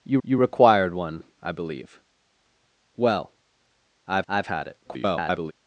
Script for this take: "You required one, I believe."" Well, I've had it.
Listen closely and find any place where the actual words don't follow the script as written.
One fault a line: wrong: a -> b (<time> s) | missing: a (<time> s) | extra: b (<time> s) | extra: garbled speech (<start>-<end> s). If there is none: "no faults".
extra: you (0.2 s)
extra: I've (4.3 s)
extra: garbled speech (4.8-5.5 s)